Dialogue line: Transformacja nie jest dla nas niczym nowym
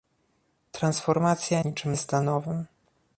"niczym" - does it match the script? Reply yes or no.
no